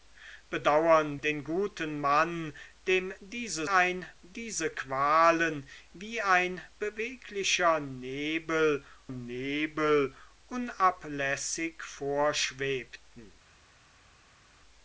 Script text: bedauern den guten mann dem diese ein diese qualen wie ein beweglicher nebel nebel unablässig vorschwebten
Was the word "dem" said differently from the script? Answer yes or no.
no